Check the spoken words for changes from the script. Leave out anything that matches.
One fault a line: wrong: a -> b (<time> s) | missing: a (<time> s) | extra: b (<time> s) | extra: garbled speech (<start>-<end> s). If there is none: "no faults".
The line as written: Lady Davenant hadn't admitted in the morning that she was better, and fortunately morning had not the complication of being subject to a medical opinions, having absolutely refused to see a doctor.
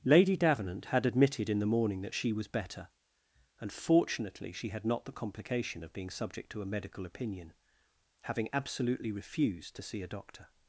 wrong: hadn't -> had (0.8 s)
wrong: morning -> she (4.5 s)
wrong: opinions -> opinion (7.0 s)